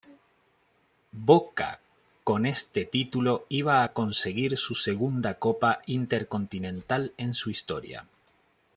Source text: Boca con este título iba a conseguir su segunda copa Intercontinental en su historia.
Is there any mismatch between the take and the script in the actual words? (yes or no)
no